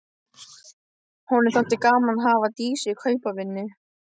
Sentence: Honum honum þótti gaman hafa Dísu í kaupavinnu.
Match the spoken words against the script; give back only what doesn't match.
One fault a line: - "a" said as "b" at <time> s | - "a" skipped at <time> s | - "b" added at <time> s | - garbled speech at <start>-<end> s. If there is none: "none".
- "honum" skipped at 1.5 s
- "að" added at 2.1 s